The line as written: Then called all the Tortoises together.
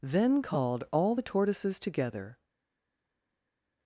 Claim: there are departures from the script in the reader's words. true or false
false